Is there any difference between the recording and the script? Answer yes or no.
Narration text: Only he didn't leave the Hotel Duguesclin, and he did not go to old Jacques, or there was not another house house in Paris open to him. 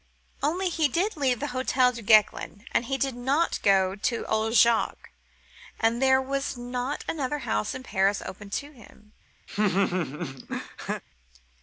yes